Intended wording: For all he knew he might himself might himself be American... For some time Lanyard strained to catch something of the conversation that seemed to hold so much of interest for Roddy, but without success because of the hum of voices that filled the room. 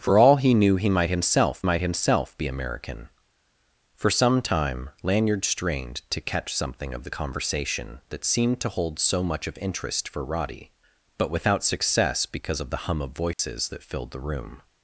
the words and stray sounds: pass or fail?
fail